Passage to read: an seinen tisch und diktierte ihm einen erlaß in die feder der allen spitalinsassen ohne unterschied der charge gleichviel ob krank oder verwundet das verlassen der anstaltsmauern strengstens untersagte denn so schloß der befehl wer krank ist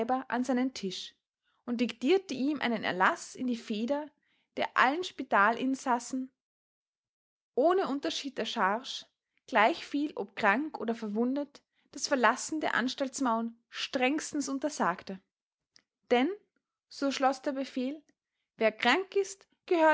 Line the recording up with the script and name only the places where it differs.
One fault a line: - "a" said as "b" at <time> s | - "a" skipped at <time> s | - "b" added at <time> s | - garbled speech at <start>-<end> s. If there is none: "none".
none